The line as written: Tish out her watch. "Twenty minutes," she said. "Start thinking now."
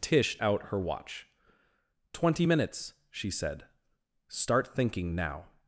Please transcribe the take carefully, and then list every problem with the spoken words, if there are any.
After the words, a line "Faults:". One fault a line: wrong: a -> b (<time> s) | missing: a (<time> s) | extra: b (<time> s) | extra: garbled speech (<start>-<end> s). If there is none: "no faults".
Tish out her watch. "Twenty minutes," she said. "Start thinking now."
Faults:
no faults